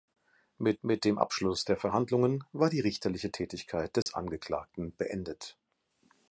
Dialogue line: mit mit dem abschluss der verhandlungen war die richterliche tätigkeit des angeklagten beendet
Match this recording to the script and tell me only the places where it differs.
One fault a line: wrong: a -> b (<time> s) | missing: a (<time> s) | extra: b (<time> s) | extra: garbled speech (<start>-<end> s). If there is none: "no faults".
no faults